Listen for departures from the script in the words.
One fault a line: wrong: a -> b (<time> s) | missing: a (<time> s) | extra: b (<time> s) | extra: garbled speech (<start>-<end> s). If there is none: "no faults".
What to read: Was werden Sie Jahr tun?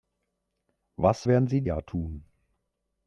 no faults